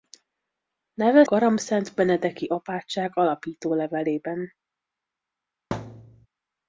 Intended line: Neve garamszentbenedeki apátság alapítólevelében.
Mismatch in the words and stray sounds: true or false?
true